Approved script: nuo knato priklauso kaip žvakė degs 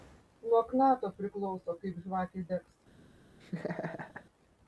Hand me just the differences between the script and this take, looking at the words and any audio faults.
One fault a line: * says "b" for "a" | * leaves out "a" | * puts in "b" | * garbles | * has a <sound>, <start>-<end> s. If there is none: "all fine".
* has a laugh, 3.4-4.2 s